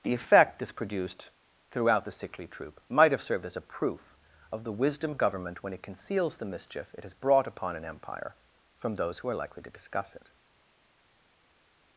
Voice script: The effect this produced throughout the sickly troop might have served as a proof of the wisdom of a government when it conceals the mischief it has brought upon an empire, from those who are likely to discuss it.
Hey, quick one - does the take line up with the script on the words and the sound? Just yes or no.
no